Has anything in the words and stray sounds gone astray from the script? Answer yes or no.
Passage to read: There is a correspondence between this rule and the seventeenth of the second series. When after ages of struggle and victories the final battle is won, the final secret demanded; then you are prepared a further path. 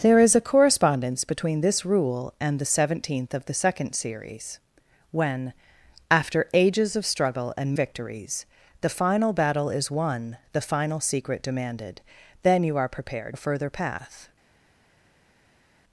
no